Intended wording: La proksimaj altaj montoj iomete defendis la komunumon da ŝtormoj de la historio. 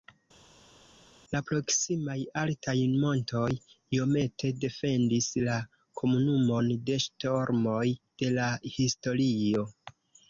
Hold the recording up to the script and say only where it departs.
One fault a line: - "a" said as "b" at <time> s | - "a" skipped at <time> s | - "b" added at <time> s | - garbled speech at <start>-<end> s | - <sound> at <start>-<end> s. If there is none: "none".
- "da" said as "de" at 6.9 s